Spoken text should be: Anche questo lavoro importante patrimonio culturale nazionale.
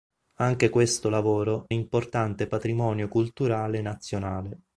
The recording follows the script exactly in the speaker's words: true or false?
true